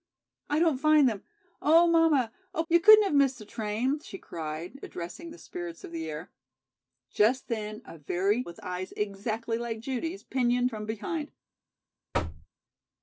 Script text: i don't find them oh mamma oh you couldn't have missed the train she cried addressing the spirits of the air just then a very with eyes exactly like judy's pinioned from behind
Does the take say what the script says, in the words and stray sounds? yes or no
no